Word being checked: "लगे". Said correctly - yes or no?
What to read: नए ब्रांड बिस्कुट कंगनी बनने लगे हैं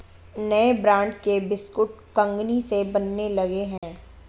yes